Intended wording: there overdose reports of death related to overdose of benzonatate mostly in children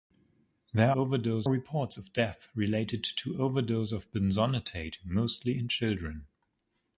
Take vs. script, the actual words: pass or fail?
pass